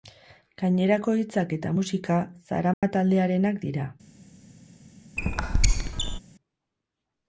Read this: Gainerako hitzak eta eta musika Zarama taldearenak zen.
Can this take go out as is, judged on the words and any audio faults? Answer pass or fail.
fail